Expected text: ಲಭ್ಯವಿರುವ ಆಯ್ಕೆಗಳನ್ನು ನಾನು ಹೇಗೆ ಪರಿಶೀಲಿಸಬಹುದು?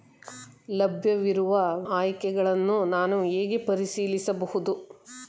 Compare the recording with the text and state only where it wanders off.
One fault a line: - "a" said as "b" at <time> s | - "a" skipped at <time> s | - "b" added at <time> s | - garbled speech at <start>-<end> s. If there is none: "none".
none